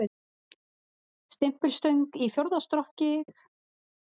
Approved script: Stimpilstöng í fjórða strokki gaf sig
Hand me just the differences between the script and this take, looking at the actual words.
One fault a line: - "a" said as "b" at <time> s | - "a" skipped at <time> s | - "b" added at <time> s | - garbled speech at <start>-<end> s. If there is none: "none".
- "gaf" skipped at 3.1 s